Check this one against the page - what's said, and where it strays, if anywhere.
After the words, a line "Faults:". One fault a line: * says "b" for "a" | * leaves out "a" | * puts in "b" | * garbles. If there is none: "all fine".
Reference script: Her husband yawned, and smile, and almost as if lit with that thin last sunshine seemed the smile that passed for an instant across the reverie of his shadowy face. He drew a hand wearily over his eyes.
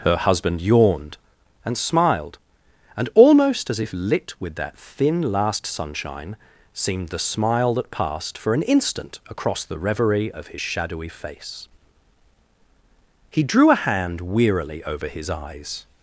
Her husband yawned, and smiled, and almost as if lit with that thin last sunshine seemed the smile that passed for an instant across the reverie of his shadowy face. He drew a hand wearily over his eyes.
Faults:
* says "smiled" for "smile"